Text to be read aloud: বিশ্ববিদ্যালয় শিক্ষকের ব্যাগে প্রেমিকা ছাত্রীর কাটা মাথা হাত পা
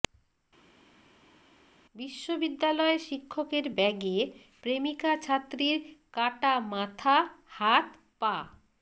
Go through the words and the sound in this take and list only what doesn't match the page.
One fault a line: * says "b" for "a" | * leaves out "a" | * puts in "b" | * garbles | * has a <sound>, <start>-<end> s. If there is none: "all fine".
all fine